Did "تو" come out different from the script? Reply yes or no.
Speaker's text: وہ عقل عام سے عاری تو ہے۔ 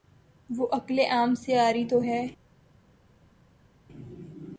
no